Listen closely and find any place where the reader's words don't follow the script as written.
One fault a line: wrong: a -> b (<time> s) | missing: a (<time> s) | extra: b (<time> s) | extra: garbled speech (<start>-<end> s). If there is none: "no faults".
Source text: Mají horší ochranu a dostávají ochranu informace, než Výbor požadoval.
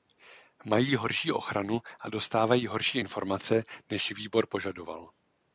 wrong: ochranu -> horší (2.7 s)